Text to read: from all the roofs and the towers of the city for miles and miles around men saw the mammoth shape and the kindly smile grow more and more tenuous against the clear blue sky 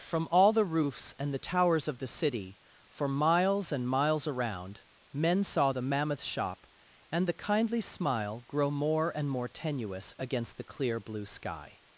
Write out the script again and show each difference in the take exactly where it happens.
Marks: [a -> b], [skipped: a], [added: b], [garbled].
from all the roofs and the towers of the city for miles and miles around men saw the mammoth [shape -> shop] and the kindly smile grow more and more tenuous against the clear blue sky